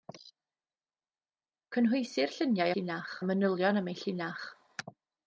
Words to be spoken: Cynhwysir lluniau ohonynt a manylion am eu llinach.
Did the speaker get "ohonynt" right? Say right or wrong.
wrong